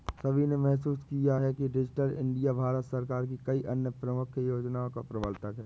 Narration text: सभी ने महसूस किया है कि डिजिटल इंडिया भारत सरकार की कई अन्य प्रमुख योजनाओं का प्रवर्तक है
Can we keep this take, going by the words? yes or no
yes